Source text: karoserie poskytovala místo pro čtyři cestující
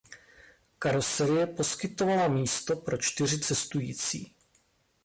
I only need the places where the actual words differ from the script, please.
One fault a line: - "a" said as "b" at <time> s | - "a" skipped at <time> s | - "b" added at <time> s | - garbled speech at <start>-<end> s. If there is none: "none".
none